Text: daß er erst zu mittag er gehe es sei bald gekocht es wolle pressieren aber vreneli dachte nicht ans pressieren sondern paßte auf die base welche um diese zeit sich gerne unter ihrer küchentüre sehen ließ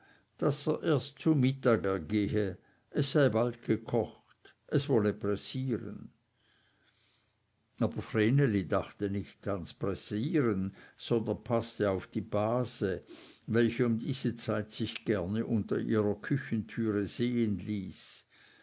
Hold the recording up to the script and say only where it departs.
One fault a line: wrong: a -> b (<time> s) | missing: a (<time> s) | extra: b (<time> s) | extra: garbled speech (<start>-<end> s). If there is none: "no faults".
no faults